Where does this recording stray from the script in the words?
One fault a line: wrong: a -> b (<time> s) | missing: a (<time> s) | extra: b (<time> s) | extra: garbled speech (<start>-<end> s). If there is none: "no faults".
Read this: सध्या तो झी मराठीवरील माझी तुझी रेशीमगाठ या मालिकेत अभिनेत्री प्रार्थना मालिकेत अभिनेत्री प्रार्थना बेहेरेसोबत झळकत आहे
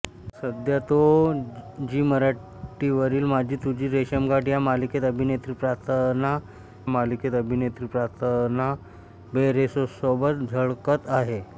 no faults